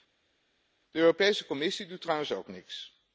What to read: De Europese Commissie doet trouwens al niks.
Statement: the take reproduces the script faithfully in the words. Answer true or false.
false